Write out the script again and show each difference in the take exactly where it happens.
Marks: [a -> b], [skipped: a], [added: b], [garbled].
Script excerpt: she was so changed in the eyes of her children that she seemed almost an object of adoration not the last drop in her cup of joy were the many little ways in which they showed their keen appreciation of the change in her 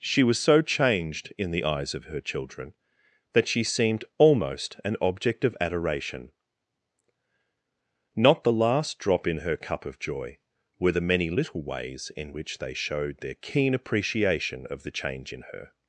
she was so changed in the eyes of her children that she seemed almost an object of adoration not the last drop in her cup of joy were the many little ways in which they showed their keen appreciation of the change in her